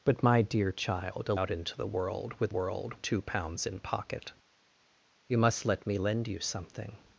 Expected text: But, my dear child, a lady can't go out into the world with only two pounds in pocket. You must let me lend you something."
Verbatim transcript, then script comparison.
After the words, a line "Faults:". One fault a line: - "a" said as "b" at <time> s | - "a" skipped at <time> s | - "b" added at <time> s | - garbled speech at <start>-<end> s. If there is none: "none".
But, my dear child, a out into the world with world two pounds in pocket. You must let me lend you something."
Faults:
- "lady can't go" skipped at 1.4 s
- "only" said as "world" at 2.5 s